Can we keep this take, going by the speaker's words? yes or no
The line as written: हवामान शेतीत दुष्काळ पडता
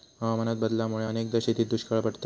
no